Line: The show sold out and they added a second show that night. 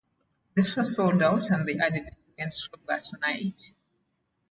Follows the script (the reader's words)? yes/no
yes